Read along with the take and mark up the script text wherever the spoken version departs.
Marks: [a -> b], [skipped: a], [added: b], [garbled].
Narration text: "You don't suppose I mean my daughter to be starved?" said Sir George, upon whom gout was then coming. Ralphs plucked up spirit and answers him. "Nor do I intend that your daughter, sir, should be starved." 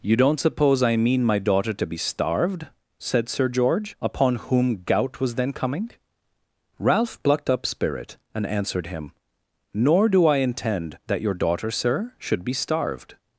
"You don't suppose I mean my daughter to be starved?" said Sir George, upon whom gout was then coming. [Ralphs -> Ralph] plucked up spirit and [answers -> answered] him. "Nor do I intend that your daughter, sir, should be starved."